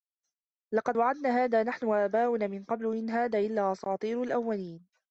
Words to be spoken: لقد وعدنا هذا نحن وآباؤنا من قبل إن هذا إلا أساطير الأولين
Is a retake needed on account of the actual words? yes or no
no